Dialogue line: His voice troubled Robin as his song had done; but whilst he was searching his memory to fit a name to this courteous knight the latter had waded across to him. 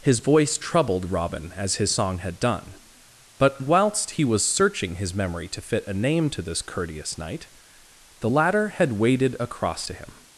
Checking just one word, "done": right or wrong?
right